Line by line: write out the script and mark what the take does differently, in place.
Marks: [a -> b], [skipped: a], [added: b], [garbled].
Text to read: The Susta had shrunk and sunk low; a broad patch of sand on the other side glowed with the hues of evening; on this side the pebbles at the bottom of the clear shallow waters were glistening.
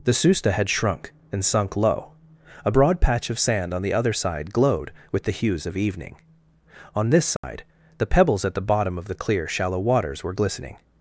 The Susta had shrunk and sunk low; a broad patch of sand on the other side glowed with the hues of evening; on this side the pebbles at the bottom of the clear shallow waters were glistening.